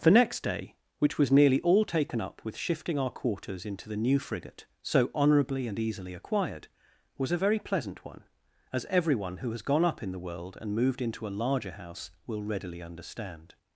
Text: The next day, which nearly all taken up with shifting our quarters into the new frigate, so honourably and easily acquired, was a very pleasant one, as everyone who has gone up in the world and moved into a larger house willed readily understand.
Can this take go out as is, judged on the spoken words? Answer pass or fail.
fail